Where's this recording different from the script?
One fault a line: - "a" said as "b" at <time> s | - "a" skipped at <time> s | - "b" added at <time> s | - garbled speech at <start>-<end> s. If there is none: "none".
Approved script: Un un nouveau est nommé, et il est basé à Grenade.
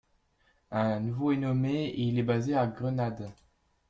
- "un" skipped at 1.0 s